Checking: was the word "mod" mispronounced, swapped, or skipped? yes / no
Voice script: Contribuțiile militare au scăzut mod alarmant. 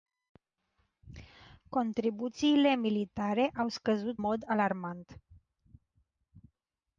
no